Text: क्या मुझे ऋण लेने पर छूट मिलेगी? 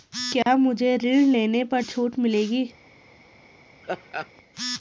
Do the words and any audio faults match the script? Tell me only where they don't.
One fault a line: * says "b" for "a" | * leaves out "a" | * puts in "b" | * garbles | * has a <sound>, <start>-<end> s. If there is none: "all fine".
* has a dropout, 0.4-0.5 s
* has a laugh, 3.8-4.3 s